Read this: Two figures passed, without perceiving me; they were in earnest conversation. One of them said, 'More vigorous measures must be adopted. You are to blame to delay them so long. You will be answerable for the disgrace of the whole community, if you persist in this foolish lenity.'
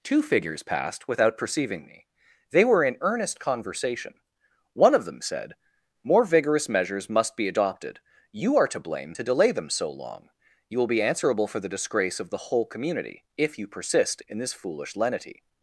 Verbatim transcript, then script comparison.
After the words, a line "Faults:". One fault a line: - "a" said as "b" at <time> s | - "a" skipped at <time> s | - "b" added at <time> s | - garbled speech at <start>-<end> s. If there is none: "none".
Two figures passed, without perceiving me; they were in earnest conversation. One of them said, 'More vigorous measures must be adopted. You are to blame to delay them so long. You will be answerable for the disgrace of the whole community, if you persist in this foolish lenity.'
Faults:
none